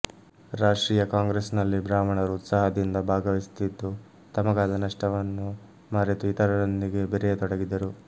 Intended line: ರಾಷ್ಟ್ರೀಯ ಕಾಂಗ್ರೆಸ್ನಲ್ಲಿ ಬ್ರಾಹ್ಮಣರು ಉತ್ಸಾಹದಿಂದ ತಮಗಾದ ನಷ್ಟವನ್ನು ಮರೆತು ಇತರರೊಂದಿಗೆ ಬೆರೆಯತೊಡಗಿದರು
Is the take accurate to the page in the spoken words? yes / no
no